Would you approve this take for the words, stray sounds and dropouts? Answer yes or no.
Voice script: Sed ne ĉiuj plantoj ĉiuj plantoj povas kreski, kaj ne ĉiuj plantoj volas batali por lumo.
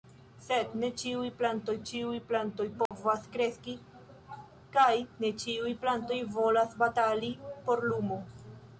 no